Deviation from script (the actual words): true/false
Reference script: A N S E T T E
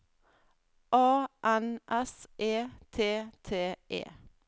false